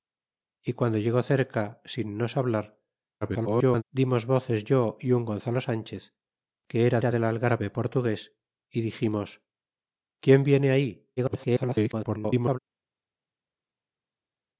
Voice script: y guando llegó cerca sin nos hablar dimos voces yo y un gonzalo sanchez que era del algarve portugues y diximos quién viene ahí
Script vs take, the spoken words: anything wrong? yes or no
yes